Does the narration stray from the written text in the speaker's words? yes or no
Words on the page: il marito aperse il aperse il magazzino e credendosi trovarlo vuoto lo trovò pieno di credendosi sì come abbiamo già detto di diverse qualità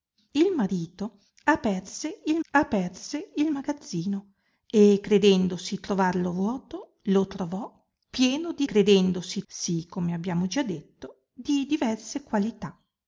no